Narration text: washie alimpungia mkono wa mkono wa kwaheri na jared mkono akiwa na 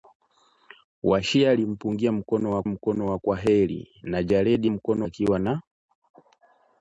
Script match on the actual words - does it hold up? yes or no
yes